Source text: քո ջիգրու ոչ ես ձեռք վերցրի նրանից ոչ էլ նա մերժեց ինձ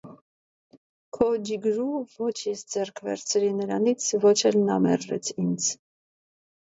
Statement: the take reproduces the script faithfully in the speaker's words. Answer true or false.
true